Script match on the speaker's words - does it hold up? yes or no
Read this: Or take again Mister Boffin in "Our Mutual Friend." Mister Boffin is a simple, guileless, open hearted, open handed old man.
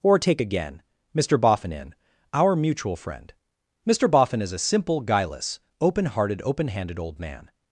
yes